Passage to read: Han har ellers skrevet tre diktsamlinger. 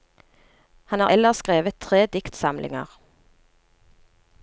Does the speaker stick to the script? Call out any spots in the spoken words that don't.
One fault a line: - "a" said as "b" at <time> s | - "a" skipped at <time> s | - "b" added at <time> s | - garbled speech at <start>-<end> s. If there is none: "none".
none